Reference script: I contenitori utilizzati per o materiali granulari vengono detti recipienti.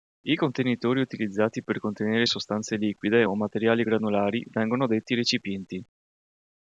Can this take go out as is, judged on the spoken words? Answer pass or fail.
fail